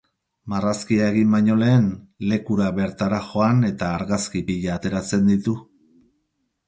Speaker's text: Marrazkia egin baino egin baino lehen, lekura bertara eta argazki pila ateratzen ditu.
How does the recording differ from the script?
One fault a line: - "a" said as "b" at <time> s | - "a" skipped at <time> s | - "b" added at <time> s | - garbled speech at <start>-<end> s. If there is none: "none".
- "egin baino" skipped at 1.6 s
- "joan" added at 3.3 s